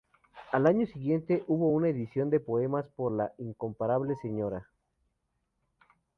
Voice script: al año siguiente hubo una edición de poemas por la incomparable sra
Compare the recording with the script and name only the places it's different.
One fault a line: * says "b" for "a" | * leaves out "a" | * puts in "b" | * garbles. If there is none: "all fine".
all fine